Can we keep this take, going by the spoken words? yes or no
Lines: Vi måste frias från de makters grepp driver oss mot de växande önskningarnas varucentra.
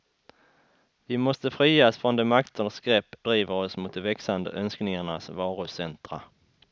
yes